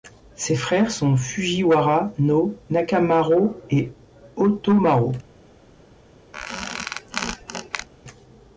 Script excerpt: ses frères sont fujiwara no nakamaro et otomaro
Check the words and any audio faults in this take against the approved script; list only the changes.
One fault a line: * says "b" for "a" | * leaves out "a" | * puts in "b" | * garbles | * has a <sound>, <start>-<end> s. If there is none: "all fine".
* has a squeak, 6.3-7.9 s